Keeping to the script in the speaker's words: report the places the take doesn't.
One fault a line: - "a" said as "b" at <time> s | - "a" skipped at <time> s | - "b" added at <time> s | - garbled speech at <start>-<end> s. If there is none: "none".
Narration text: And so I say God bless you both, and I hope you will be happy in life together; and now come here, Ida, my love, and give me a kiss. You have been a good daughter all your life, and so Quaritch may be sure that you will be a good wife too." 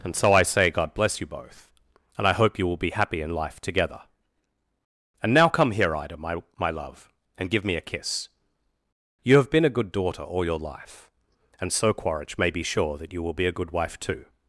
- "my" added at 6.6 s